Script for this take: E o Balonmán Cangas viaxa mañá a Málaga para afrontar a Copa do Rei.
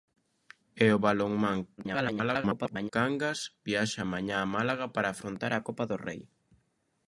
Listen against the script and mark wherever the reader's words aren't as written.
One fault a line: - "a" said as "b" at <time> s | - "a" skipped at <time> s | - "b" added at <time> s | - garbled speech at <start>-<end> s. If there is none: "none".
- garbled speech at 1.8-2.9 s